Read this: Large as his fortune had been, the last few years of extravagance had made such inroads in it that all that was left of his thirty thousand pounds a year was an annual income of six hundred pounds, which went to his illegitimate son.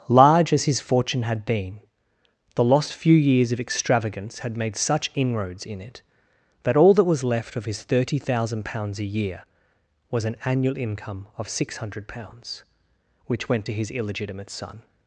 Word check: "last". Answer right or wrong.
wrong